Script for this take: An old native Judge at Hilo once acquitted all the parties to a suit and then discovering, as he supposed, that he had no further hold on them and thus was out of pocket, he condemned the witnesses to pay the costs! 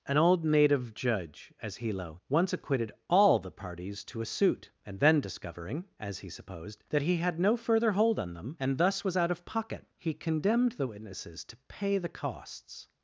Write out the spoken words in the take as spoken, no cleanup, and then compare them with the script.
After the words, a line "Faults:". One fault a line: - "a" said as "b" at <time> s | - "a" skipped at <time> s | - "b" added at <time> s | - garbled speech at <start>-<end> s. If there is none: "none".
An old native Judge as Hilo once acquitted all the parties to a suit and then discovering, as he supposed, that he had no further hold on them and thus was out of pocket, he condemned the witnesses to pay the costs!
Faults:
- "at" said as "as" at 1.6 s